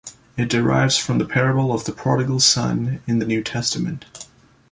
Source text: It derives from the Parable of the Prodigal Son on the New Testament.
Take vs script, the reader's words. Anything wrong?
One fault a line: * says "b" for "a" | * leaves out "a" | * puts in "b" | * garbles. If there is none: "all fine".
* says "in" for "on"